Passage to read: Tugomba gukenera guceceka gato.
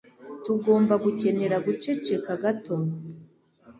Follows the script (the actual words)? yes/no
yes